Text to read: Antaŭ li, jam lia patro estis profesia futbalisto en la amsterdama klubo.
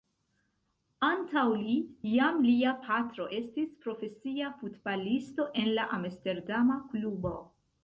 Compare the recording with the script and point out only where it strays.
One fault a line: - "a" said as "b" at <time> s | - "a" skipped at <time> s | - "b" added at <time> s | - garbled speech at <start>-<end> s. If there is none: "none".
none